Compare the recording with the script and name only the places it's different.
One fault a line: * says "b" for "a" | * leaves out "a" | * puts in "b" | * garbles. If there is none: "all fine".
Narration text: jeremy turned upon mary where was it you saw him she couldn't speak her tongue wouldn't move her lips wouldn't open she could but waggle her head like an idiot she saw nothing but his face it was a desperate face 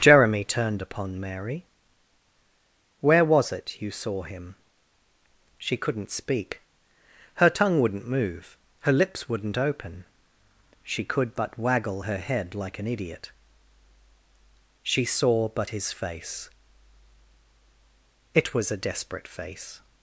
* leaves out "nothing"